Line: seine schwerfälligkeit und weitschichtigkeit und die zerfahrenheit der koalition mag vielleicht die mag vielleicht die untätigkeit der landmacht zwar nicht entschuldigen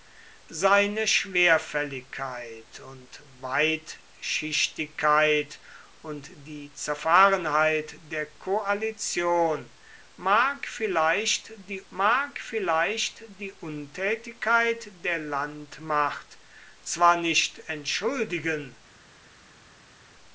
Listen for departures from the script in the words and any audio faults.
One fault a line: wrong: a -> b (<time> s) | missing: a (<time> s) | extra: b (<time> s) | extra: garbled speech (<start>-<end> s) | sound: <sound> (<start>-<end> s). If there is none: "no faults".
no faults